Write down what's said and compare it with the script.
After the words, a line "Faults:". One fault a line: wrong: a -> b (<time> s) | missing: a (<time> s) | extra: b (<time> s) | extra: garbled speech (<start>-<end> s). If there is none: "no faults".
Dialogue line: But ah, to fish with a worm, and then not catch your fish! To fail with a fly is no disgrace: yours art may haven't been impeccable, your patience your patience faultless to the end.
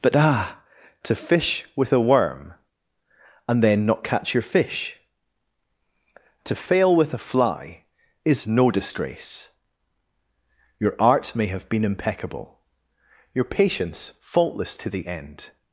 But ah, to fish with a worm, and then not catch your fish! To fail with a fly is no disgrace: your art may have been impeccable, your patience faultless to the end.
Faults:
wrong: yours -> your (10.8 s)
wrong: haven't -> have (11.5 s)
missing: your patience (14.1 s)